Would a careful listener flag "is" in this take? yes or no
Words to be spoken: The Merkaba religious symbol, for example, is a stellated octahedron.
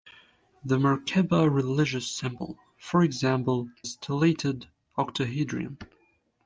yes